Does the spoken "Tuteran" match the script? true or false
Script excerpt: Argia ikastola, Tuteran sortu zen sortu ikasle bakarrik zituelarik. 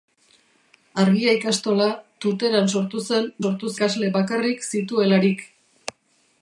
true